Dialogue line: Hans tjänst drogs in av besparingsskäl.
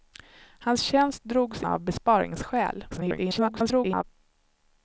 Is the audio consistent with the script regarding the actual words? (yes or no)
no